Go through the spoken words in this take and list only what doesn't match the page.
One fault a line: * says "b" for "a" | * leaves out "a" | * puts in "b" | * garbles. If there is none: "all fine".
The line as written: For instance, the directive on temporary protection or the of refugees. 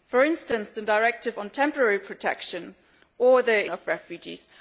all fine